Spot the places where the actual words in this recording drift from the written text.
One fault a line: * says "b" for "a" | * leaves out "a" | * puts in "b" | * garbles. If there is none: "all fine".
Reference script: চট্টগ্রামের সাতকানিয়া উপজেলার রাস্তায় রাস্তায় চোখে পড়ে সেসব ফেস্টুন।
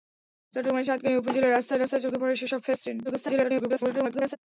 * garbles